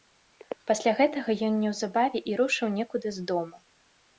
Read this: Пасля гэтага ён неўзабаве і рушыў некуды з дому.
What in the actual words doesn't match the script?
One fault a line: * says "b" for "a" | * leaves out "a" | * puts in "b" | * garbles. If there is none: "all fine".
all fine